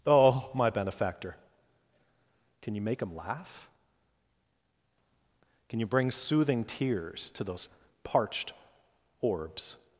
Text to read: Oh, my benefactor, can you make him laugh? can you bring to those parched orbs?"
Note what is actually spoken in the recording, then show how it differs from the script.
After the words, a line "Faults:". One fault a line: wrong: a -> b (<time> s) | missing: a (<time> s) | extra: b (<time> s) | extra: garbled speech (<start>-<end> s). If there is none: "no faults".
Oh, my benefactor, can you make him laugh? can you bring soothing tears to those parched orbs?"
Faults:
extra: soothing tears (6.1 s)